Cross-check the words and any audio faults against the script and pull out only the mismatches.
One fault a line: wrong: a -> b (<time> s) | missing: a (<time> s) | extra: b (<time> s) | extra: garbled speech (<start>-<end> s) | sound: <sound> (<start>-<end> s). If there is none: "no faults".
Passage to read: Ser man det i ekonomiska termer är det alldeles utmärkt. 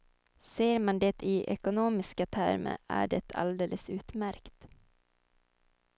no faults